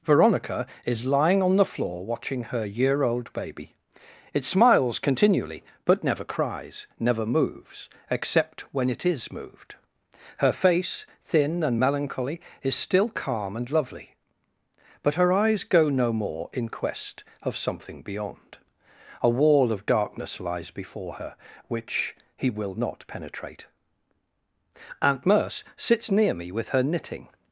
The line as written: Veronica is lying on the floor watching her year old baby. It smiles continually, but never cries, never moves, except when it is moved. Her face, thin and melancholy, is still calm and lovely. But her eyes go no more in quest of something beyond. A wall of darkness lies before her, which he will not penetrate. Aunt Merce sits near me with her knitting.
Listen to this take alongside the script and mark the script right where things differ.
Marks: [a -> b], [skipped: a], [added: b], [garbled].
Veronica is lying on the floor watching her year old baby. It smiles continually, but never cries, never moves, except when it is moved. Her face, thin and melancholy, is still calm and lovely. But her eyes go no more in quest of something beyond. A wall of darkness lies before her, which he will not penetrate. Aunt Merce sits near me with her knitting.